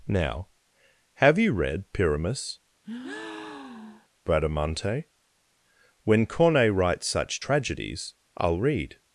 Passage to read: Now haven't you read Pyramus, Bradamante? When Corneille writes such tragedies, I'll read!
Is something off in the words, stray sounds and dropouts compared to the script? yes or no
yes